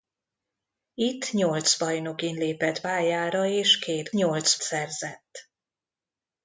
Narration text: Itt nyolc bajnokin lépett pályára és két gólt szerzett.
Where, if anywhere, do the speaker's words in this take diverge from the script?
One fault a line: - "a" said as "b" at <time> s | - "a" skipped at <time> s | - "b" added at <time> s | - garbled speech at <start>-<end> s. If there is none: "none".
- "gólt" said as "nyolc" at 4.1 s